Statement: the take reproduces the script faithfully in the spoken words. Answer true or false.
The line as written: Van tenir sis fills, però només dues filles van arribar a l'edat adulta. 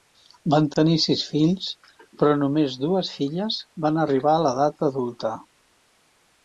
true